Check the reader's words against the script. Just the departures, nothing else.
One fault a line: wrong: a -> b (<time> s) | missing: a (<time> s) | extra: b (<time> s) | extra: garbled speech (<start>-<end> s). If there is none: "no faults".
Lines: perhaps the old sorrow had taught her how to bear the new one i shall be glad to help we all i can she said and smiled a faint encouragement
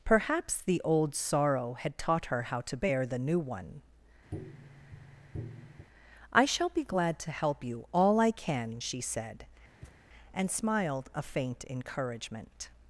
wrong: we -> you (7.6 s)